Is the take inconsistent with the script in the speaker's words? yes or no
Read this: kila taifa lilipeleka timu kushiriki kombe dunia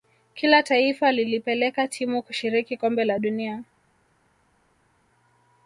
yes